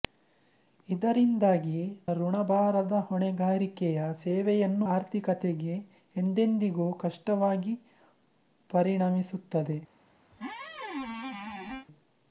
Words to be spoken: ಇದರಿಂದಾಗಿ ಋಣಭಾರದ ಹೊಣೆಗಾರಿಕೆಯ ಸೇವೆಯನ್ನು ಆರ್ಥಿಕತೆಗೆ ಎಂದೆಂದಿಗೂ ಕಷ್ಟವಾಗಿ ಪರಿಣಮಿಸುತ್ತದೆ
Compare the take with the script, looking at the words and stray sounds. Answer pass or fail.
fail